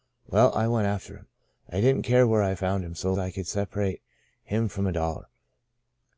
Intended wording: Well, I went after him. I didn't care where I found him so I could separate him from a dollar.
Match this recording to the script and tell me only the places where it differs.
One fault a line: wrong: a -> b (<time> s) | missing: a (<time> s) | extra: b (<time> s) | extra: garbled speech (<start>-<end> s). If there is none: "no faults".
no faults